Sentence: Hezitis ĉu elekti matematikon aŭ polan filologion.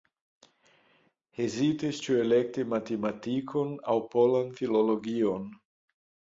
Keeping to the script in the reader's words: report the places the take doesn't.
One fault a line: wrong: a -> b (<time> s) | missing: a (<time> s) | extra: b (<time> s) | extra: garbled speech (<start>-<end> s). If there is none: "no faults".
no faults